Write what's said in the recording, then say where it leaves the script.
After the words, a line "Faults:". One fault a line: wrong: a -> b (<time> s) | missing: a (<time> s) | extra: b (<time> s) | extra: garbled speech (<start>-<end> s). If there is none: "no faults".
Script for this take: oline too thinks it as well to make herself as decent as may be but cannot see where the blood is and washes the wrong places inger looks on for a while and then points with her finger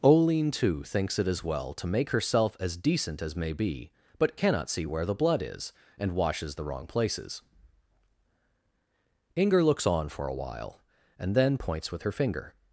oline too thinks it as well to make herself as decent as may be but cannot see where the blood is and washes the wrong places inger looks on for a while and then points with her finger
Faults:
no faults